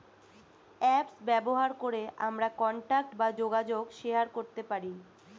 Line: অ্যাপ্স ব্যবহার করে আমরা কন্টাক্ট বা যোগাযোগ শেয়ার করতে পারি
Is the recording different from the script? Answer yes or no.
no